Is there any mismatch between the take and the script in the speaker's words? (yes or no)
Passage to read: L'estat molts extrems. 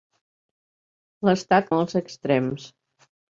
no